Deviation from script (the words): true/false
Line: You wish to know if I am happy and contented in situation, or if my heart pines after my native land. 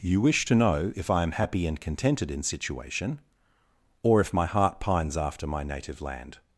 false